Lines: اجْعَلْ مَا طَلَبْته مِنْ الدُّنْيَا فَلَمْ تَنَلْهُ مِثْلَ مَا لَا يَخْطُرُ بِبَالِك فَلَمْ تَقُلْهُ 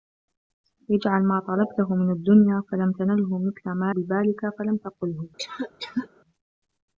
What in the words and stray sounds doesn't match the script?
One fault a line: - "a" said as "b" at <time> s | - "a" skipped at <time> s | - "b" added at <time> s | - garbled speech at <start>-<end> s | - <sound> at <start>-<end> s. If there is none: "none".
- "لَا يَخْطُرُ" skipped at 4.0 s
- cough at 5.4-6.1 s